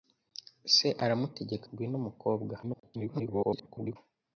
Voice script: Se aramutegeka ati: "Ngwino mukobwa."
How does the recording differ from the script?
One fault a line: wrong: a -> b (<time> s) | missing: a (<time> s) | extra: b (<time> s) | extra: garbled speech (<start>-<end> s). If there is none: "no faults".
missing: ati (1.6 s)
extra: garbled speech (2.6-4.0 s)